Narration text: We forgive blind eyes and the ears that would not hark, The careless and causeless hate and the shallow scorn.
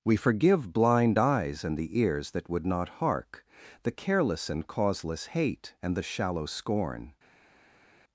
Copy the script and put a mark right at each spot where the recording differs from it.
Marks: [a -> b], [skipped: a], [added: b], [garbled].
We forgive blind eyes and the ears that would not hark, The careless and causeless hate and the shallow scorn.